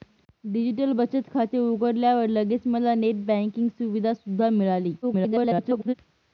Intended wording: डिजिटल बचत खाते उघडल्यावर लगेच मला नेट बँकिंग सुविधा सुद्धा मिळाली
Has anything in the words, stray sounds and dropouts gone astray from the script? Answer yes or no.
yes